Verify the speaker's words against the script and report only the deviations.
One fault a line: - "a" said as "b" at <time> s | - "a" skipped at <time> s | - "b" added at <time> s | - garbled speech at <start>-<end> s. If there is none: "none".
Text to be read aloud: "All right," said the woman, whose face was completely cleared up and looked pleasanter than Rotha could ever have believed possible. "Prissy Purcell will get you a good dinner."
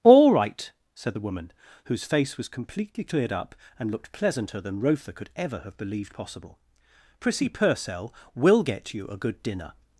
none